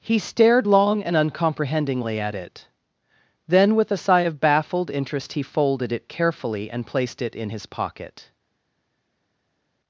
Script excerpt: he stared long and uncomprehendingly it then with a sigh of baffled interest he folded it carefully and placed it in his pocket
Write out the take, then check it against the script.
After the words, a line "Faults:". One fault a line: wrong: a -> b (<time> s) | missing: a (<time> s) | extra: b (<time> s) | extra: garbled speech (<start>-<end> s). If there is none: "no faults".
he stared long and uncomprehendingly at it then with a sigh of baffled interest he folded it carefully and placed it in his pocket
Faults:
extra: at (2.2 s)